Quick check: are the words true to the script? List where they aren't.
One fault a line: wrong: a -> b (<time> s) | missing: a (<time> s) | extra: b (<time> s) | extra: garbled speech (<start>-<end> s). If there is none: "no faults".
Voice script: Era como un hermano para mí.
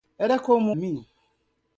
missing: un hermano para (0.7 s)